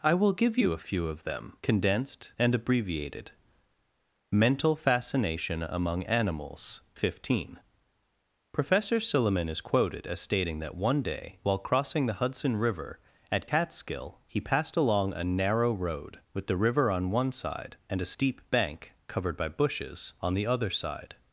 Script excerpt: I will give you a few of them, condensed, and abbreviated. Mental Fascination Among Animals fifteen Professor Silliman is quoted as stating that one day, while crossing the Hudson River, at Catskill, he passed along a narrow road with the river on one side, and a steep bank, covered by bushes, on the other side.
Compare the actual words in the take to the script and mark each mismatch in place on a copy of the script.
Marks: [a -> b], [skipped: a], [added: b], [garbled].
I will give you a few of them, condensed, and abbreviated. Mental Fascination Among Animals fifteen Professor Silliman is quoted as stating that one day, while crossing the Hudson River, at Catskill, he passed along a narrow road with the river on one side, and a steep bank, covered by bushes, on the other side.